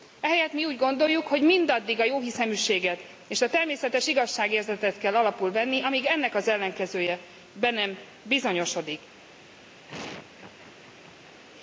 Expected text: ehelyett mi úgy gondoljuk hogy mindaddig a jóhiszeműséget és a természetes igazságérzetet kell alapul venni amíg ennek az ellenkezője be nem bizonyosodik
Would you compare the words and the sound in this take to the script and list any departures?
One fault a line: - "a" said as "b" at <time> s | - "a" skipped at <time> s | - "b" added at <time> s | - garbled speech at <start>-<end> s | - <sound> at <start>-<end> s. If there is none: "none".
- laugh at 9.9-11.4 s